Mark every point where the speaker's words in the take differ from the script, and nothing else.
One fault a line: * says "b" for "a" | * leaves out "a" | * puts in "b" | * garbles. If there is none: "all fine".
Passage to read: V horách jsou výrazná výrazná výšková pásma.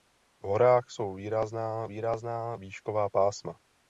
all fine